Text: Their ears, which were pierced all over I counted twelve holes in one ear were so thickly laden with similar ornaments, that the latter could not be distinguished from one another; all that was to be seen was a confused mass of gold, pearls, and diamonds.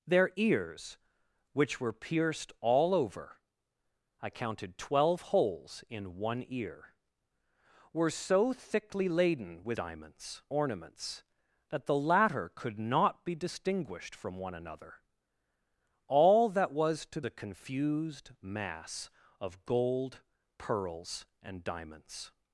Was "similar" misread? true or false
true